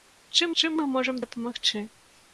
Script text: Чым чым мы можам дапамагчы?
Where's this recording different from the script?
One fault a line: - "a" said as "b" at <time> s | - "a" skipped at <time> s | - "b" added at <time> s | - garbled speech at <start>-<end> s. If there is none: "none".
none